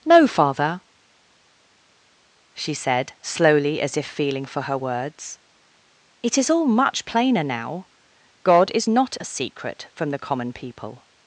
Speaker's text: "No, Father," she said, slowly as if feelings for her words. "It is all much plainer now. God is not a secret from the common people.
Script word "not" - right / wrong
right